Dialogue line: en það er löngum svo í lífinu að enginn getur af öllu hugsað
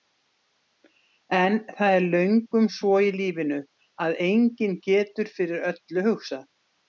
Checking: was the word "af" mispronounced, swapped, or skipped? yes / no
yes